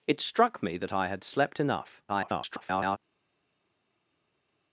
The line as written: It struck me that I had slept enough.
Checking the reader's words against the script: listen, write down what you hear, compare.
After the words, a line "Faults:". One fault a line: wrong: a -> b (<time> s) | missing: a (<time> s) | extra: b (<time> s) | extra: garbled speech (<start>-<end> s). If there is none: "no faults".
It struck me that I had slept enough. [garbled]
Faults:
extra: garbled speech (2.1-3.0 s)